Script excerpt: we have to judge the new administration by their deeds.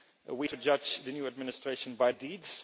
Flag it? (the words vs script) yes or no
yes